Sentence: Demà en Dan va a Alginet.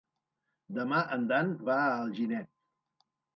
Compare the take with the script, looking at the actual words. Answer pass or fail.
pass